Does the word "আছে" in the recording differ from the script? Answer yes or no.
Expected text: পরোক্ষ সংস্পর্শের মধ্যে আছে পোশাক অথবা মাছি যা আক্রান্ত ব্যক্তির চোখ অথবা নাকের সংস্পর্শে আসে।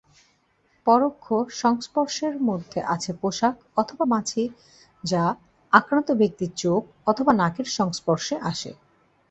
no